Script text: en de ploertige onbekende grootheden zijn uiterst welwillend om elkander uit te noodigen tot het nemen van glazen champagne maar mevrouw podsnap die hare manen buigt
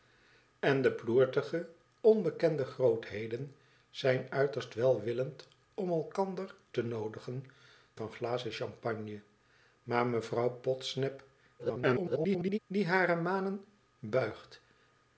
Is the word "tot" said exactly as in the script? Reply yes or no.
no